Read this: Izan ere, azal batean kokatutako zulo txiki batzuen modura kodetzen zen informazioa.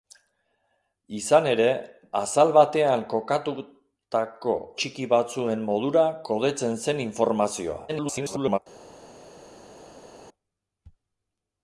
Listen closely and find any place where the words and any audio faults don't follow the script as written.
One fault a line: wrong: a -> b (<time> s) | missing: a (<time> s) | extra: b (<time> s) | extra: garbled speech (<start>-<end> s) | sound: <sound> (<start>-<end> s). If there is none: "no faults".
missing: zulo (4.6 s)
extra: garbled speech (7.9-8.6 s)